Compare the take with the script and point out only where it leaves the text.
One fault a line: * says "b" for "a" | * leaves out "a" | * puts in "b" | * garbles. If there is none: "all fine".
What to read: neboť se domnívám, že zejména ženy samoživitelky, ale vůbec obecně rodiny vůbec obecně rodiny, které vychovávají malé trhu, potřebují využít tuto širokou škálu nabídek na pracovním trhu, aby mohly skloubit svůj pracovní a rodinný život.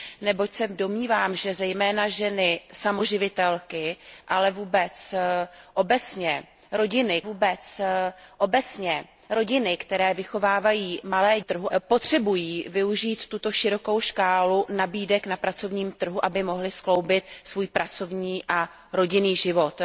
all fine